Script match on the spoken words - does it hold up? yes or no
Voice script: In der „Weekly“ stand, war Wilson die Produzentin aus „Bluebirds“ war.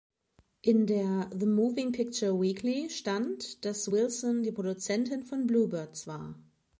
no